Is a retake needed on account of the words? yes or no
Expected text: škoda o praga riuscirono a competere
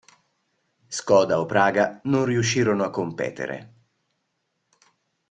yes